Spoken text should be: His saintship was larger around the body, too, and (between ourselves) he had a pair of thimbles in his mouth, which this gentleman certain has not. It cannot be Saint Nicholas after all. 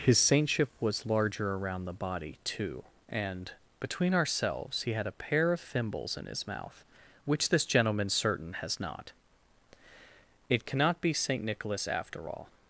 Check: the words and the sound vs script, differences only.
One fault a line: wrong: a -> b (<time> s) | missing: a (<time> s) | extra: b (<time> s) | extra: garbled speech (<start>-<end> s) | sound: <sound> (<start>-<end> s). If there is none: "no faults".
no faults